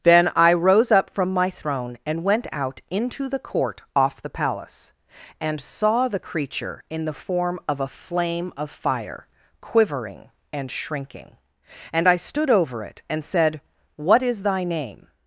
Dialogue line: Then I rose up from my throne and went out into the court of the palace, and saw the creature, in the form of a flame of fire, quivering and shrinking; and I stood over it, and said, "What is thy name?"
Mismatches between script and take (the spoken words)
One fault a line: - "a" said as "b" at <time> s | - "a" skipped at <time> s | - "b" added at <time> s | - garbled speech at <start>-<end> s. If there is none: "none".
- "of" said as "off" at 4.0 s